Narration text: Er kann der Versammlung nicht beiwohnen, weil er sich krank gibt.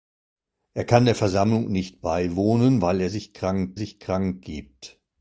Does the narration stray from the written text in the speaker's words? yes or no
yes